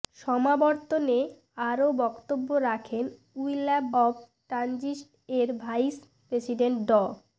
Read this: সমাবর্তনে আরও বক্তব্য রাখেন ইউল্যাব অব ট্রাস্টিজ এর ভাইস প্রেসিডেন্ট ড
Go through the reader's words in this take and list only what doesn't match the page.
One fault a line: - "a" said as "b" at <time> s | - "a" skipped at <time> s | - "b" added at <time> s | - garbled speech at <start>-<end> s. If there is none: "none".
none